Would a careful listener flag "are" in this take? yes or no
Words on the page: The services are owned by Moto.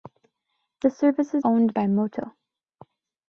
yes